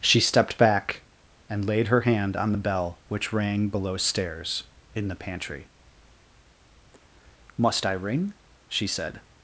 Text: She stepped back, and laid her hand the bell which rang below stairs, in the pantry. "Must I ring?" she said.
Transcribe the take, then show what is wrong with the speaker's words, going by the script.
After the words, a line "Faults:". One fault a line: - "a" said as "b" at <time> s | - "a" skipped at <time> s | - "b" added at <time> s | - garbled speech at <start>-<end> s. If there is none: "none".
She stepped back, and laid her hand on the bell which rang below stairs, in the pantry. "Must I ring?" she said.
Faults:
- "on" added at 2.4 s